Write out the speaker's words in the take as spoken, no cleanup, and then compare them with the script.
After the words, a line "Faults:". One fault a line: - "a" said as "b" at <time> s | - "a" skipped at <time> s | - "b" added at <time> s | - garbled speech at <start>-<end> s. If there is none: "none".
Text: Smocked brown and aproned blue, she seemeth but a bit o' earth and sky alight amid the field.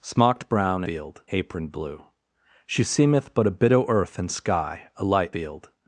Smocked brown field aproned blue, she seemeth but a bit o' earth and sky alight field.
Faults:
- "and" said as "field" at 0.8 s
- "amid the" skipped at 5.3 s